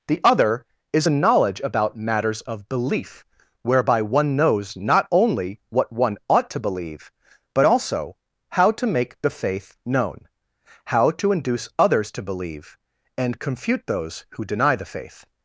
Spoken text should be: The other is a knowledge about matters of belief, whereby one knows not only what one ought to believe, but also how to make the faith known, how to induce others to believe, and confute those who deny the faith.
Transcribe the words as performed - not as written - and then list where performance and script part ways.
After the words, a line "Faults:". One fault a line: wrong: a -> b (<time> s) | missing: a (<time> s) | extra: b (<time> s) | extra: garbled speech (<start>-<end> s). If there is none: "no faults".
The other is a knowledge about matters of belief, whereby one knows not only what one ought to believe, but also how to make the faith known, how to induce others to believe, and confute those who deny the faith.
Faults:
no faults